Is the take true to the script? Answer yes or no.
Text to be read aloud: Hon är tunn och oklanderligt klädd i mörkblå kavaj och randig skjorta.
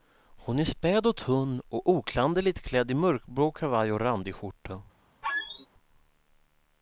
no